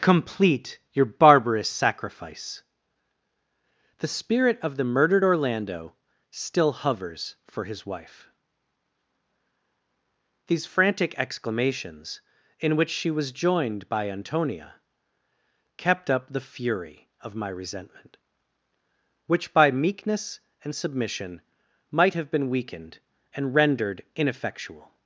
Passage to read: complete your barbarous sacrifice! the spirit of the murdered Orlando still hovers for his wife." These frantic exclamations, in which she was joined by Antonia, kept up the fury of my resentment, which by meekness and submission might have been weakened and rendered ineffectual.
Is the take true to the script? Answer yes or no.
yes